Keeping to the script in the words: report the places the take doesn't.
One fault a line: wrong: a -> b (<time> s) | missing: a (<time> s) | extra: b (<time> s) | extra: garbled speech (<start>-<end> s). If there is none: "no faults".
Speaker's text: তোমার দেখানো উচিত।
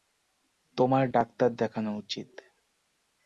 extra: ডাক্তার (1.1 s)